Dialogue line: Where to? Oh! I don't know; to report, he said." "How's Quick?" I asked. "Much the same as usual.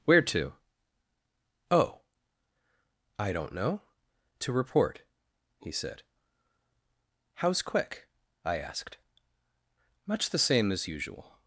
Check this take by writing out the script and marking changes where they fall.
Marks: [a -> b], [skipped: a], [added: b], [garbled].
Where to? Oh! I don't know; to report, he said." "How's Quick?" I asked. "Much the same as usual.